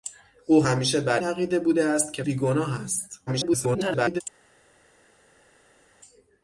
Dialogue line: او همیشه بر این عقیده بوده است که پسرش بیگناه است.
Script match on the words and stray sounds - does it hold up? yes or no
no